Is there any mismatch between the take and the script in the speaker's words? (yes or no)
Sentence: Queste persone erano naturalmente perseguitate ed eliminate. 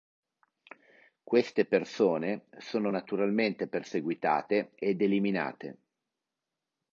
yes